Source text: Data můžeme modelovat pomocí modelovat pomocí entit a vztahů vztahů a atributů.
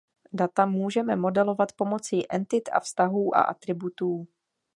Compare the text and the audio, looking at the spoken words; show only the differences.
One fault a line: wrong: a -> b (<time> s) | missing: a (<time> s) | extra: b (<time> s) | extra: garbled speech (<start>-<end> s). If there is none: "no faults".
missing: modelovat pomocí (2.3 s)
missing: vztahů (3.4 s)